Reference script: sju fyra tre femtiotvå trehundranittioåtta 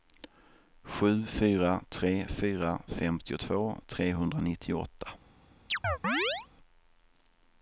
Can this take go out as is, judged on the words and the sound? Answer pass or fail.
fail